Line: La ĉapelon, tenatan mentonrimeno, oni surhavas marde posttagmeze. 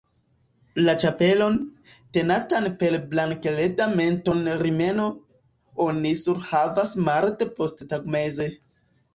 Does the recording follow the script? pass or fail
fail